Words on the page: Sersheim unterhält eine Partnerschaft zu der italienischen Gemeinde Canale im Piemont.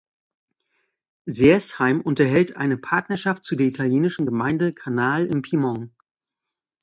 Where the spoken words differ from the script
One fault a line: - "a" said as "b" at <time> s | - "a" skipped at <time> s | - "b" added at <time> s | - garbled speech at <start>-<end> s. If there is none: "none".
none